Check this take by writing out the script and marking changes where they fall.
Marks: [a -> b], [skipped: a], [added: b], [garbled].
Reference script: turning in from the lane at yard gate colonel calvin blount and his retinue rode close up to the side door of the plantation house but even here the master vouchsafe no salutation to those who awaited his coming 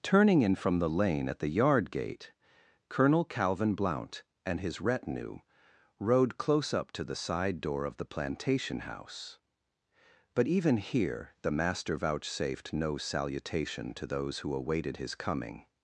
turning in from the lane at [added: the] yard gate colonel calvin blount and his retinue rode close up to the side door of the plantation house but even here the master [vouchsafe -> vouchsafed] no salutation to those who awaited his coming